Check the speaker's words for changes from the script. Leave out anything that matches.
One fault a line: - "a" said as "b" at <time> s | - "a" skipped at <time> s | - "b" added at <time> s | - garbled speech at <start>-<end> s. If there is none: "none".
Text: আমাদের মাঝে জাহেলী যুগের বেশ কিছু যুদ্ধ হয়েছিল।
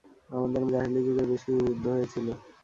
- "মাঝে" skipped at 0.6 s